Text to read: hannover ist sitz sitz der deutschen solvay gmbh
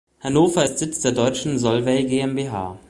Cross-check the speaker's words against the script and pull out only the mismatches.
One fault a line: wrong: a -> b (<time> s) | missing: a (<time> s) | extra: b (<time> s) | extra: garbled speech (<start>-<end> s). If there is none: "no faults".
missing: sitz (1.0 s)